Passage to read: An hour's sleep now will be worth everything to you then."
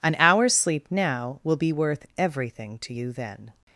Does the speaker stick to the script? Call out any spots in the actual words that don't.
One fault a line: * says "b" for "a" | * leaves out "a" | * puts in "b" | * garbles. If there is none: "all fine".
all fine